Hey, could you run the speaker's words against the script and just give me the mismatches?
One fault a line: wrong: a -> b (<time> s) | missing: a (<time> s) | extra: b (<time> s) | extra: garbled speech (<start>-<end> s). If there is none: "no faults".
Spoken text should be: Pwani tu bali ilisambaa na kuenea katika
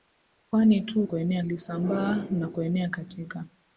wrong: bali -> kuenea (1.0 s)